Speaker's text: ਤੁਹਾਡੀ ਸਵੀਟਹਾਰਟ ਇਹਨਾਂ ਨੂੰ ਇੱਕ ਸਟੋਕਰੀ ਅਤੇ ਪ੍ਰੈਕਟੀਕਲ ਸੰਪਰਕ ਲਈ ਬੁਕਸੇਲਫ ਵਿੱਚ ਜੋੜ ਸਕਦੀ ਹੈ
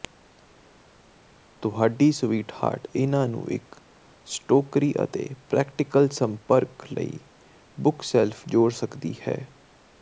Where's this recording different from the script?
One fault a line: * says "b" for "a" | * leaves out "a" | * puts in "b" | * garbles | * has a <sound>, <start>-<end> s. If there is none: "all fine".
* leaves out "ਵਿੱਚ"